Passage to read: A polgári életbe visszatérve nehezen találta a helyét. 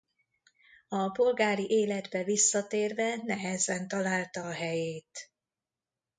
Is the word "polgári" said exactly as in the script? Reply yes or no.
yes